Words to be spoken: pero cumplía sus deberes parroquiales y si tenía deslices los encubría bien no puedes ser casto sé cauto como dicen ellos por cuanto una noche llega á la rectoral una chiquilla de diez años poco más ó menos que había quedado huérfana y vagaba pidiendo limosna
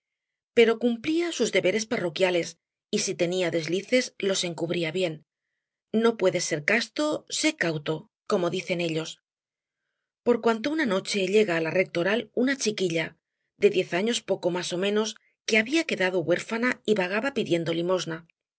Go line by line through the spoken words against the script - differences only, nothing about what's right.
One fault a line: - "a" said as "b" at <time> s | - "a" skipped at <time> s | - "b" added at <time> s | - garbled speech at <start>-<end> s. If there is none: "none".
none